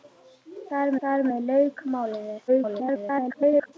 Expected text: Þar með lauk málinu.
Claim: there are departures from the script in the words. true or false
true